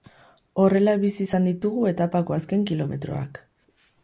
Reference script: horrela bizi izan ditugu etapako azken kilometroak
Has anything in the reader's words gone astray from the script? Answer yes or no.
no